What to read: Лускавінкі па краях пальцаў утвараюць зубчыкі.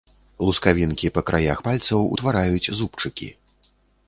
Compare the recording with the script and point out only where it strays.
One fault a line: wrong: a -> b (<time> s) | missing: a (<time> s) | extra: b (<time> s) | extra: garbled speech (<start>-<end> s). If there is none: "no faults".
no faults